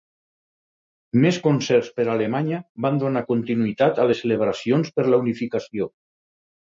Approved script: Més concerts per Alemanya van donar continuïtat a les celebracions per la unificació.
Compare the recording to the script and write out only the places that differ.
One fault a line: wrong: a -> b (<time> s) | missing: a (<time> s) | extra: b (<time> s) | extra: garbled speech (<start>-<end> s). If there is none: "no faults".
no faults